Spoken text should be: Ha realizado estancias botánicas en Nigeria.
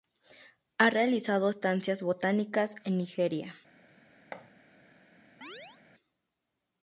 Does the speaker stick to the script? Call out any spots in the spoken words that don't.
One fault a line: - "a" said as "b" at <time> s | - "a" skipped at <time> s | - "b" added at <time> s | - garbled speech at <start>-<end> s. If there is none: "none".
none